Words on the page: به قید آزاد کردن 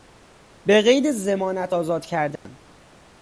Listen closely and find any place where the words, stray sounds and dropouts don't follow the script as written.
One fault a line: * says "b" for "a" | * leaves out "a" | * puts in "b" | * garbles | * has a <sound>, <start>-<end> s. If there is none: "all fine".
* puts in "ضمانت"
* has a dropout, 2.4-2.5 s